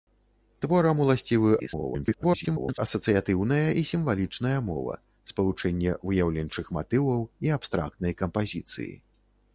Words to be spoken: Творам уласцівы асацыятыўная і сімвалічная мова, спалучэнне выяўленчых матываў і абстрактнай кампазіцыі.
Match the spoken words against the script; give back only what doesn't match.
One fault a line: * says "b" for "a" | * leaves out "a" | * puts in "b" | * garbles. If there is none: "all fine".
* garbles